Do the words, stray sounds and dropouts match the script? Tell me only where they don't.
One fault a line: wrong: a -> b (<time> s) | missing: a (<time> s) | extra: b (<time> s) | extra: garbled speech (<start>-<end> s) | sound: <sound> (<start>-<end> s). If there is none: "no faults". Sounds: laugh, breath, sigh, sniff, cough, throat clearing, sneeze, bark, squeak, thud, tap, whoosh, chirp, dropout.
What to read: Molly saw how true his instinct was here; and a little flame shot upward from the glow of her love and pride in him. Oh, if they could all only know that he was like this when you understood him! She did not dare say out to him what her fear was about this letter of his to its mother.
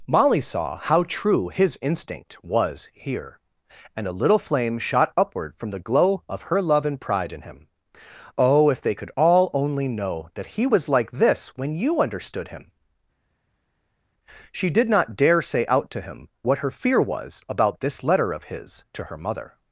wrong: its -> her (19.0 s)